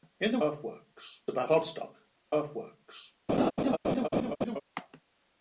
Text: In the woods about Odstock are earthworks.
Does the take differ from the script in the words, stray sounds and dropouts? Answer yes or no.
yes